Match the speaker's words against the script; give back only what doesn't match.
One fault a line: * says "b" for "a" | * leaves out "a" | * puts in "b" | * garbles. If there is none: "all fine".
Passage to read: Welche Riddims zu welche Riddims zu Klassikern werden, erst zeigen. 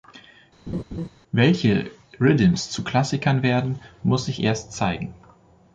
* says "Klassikern werden muss sich" for "welche Riddims zu Klassikern werden"